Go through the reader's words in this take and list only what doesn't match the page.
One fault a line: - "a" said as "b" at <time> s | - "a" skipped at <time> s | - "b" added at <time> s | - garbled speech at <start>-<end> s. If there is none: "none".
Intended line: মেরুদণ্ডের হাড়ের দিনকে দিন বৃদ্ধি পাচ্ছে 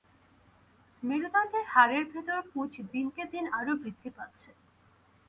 - "ভেতর পুঁজ" added at 2.1 s
- "আরও" added at 3.6 s